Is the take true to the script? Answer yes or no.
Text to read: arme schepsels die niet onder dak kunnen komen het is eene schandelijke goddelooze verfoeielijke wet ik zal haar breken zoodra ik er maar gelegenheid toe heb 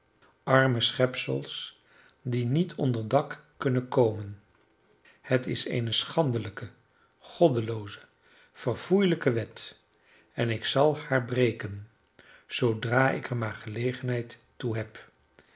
no